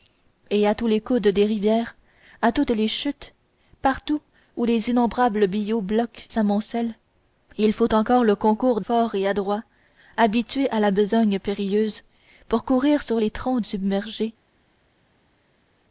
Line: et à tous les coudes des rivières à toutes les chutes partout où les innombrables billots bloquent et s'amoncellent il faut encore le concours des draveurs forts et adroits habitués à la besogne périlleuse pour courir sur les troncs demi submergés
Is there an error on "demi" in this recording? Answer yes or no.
yes